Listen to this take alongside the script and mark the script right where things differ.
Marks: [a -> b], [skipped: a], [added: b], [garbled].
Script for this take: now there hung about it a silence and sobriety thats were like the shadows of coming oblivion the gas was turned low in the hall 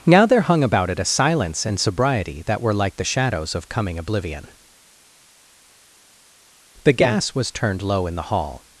now there hung about it a silence and sobriety [thats -> that] were like the shadows of coming oblivion the gas was turned low in the hall